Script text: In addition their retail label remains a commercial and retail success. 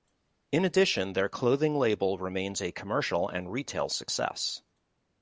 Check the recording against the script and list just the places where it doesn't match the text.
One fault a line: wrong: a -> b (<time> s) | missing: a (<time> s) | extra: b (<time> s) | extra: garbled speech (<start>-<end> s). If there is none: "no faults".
wrong: retail -> clothing (1.3 s)